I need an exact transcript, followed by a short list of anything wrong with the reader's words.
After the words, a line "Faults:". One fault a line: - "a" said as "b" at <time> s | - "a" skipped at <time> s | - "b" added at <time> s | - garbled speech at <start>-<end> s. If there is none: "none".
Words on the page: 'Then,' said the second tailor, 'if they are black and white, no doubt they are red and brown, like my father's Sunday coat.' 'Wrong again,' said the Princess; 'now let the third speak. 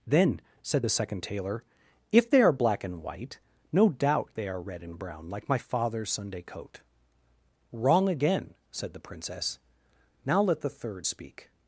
'Then,' said the second tailor, 'if they are black and white, no doubt they are red and brown, like my father's Sunday coat.' 'Wrong again,' said the Princess; 'now let the third speak.
Faults:
none